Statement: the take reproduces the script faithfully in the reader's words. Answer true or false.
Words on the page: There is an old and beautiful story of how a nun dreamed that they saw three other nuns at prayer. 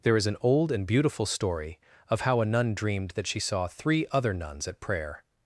false